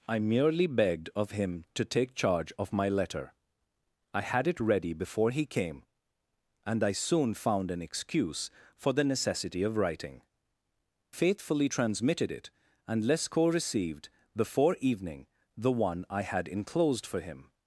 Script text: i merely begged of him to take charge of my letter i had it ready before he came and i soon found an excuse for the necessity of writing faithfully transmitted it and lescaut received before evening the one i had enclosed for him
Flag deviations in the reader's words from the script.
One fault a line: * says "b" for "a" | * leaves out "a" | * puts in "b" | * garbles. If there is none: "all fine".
all fine